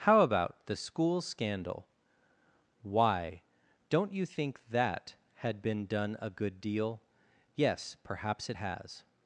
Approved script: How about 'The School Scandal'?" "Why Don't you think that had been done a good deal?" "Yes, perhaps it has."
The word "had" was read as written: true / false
true